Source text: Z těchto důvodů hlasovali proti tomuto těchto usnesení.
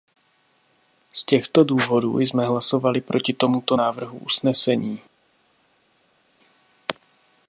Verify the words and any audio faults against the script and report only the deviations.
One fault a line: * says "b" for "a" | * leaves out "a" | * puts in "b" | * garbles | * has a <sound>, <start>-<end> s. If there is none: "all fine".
* puts in "jsme"
* says "návrhu" for "těchto"